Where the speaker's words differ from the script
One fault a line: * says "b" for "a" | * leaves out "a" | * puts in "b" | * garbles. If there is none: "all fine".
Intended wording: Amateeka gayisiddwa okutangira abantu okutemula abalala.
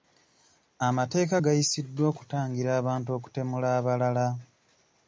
all fine